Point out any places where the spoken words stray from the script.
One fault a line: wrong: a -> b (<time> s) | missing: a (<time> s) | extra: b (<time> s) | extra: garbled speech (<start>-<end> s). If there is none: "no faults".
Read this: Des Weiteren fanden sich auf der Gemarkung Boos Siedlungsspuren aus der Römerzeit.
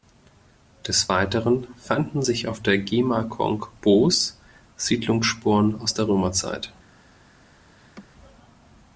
no faults